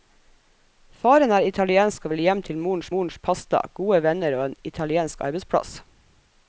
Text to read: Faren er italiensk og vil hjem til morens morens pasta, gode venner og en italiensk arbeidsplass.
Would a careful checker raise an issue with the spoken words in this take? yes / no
no